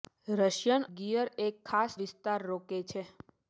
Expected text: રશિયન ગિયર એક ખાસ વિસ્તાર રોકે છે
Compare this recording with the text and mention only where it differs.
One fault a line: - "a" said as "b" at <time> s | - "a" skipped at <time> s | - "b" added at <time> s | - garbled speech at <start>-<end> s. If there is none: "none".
none